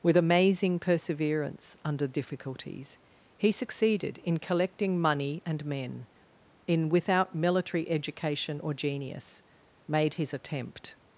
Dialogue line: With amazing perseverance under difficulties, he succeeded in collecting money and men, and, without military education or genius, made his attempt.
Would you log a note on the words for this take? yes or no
yes